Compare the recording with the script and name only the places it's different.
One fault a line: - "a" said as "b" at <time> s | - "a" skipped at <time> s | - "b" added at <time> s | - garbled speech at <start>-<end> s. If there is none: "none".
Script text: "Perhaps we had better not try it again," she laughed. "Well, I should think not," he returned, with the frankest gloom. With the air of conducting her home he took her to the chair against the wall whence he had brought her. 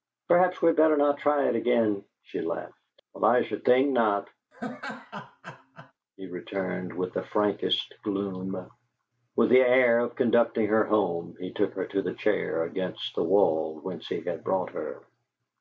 none